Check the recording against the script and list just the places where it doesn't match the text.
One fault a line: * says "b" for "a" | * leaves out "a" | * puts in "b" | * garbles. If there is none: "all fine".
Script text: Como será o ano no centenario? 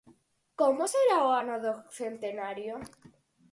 * says "do" for "no"